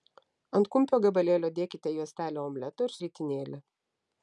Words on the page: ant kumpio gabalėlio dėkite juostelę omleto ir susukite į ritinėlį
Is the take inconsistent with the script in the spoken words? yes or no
yes